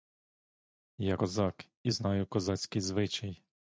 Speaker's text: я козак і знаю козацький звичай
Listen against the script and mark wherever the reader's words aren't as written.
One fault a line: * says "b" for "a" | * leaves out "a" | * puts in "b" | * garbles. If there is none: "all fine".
all fine